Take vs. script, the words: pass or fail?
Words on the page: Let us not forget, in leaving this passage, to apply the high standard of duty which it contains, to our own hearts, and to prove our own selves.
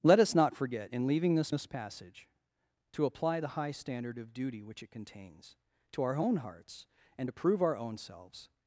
fail